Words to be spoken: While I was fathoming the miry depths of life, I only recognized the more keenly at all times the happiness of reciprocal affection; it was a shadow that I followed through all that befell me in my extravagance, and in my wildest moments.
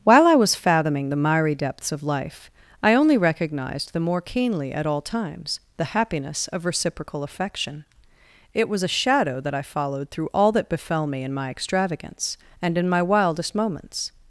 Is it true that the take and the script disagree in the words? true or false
false